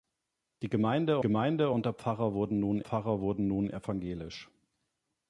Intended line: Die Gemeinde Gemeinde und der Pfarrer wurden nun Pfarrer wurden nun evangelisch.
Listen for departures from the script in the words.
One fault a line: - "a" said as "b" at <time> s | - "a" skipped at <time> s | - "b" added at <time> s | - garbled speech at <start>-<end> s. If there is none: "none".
none